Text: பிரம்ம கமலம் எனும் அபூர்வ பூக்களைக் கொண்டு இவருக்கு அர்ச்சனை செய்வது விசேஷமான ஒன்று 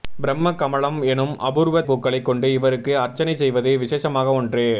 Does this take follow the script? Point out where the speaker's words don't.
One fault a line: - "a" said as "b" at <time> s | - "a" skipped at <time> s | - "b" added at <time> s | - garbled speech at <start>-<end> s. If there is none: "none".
none